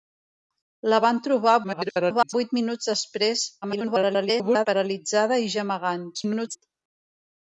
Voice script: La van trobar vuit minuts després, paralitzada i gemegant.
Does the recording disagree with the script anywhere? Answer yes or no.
yes